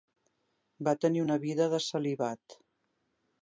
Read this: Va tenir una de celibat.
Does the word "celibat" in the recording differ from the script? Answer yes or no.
no